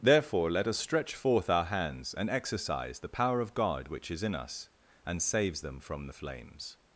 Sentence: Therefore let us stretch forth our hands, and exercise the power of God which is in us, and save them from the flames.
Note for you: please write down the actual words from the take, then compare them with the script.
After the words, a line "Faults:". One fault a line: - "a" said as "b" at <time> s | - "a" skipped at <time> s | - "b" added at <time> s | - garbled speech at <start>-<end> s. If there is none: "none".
Therefore let us stretch forth our hands, and exercise the power of God which is in us, and saves them from the flames.
Faults:
- "save" said as "saves" at 5.2 s